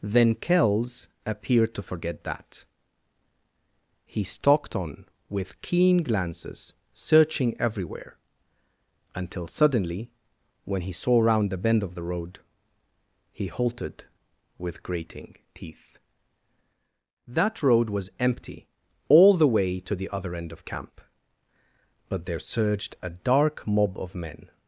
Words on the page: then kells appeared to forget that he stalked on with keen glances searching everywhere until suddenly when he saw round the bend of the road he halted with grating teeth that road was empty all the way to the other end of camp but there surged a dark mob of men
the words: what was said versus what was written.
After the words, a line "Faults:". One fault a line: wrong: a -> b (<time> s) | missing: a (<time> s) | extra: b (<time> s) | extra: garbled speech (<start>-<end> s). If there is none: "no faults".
then kells appeared to forget that he stalked on with keen glances searching everywhere until suddenly when he saw round the bend of the road he halted with grating teeth that road was empty all the way to the other end of camp but there surged a dark mob of men
Faults:
no faults